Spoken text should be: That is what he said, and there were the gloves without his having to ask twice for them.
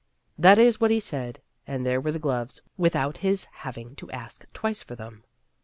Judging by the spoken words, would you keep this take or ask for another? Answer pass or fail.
pass